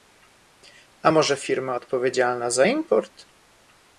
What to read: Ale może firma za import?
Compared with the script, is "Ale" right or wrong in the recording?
wrong